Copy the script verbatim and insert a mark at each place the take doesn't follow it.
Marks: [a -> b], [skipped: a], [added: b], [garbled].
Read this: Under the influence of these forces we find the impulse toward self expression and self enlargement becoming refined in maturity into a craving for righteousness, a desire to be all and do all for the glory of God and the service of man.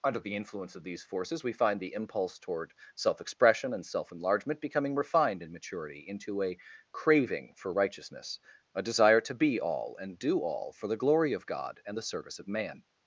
Under the influence of these forces we find the impulse toward self expression and self enlargement becoming refined in maturity into a craving for righteousness, a desire to be all and do all for the glory of God and the service of man.